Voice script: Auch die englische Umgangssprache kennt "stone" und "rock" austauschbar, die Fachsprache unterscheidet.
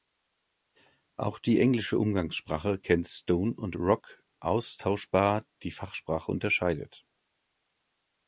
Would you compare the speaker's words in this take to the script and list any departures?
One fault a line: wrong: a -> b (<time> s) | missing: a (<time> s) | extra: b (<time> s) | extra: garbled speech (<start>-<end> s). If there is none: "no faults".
no faults